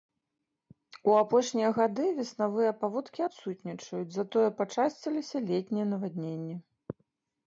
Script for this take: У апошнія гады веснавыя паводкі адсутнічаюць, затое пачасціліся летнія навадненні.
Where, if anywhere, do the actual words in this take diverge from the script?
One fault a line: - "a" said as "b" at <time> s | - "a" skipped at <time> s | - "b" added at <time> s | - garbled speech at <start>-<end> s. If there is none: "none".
none